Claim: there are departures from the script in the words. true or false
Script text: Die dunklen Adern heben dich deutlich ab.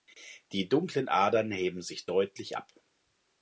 true